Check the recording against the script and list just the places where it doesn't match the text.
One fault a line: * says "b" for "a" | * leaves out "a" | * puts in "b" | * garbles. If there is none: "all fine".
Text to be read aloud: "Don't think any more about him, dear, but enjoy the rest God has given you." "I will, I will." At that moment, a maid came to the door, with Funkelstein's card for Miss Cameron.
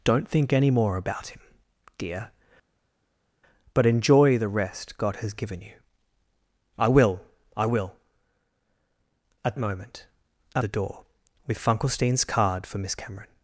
* leaves out "that"
* leaves out "maid came to"